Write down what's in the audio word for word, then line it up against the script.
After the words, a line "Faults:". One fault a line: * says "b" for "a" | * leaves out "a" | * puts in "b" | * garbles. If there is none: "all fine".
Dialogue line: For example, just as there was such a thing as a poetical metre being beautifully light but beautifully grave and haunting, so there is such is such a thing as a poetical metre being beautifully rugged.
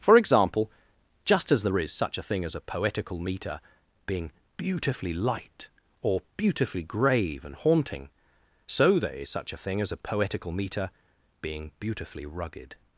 For example, just as there is such a thing as a poetical metre being beautifully light or beautifully grave and haunting, so there is such a thing as a poetical metre being beautifully rugged.
Faults:
* says "is" for "was"
* says "or" for "but"
* leaves out "is such"